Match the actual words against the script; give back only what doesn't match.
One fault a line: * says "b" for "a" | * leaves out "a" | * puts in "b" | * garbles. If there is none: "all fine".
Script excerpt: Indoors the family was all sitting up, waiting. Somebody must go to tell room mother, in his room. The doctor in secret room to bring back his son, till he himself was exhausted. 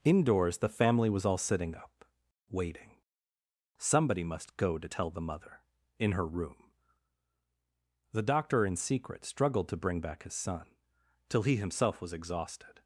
* says "the" for "room"
* says "her" for "his"
* says "struggled" for "room"